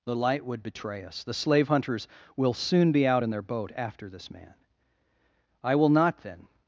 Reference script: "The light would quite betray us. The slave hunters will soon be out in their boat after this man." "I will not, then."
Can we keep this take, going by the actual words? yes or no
no